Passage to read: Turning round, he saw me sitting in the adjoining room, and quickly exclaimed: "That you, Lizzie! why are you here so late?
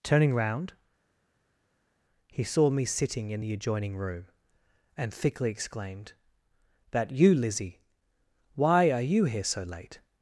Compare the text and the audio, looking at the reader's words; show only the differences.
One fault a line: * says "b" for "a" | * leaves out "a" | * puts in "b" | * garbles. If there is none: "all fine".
* says "thickly" for "quickly"